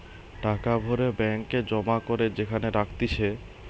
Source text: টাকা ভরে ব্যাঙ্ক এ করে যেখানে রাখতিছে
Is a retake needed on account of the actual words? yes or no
yes